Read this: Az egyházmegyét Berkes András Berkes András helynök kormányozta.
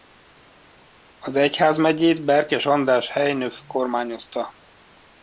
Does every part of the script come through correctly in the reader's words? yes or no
no